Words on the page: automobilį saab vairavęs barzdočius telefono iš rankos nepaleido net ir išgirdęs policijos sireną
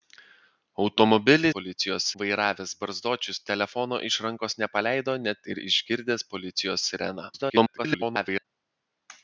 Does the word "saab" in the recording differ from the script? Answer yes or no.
yes